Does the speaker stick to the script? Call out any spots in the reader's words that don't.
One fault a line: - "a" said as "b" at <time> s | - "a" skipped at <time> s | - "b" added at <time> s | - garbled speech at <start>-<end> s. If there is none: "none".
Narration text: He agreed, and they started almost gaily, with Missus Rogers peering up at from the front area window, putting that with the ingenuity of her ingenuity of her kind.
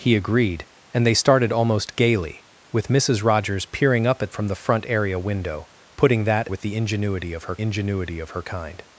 none